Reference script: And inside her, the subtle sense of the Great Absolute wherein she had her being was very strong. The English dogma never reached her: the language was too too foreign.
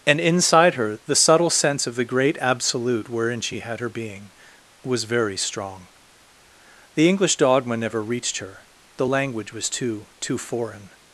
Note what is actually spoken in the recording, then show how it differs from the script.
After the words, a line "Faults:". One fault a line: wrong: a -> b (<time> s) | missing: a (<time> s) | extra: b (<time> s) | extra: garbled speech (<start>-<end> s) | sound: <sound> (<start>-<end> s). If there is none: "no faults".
And inside her, the subtle sense of the Great Absolute wherein she had her being was very strong. The English dogma never reached her: the language was too too foreign.
Faults:
no faults